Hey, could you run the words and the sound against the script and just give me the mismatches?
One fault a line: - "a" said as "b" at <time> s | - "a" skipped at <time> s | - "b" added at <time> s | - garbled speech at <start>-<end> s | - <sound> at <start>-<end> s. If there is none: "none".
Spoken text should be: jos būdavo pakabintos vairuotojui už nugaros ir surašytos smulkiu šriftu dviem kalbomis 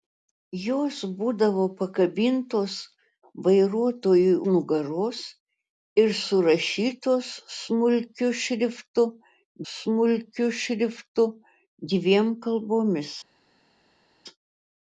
- "už" skipped at 4.3 s
- "smulkiu šriftu" added at 9.7 s